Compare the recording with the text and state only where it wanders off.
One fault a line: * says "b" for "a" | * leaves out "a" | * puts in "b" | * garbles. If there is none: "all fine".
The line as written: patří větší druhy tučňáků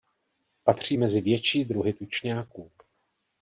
* puts in "mezi"